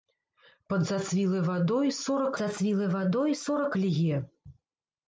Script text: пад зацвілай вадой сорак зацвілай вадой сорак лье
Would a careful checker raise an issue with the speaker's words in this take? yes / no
no